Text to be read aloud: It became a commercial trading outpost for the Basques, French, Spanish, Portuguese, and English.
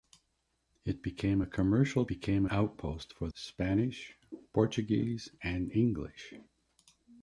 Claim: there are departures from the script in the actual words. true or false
true